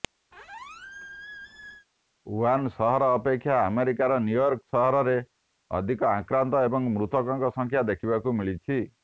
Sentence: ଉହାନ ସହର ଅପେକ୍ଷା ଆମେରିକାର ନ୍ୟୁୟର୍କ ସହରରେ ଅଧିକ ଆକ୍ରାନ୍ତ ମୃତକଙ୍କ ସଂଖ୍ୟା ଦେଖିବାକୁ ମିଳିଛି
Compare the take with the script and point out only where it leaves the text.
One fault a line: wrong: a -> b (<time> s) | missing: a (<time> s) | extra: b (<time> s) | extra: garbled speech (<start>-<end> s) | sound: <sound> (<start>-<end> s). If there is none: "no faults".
sound: squeak (0.3-1.9 s)
extra: ଏବଂ (6.6 s)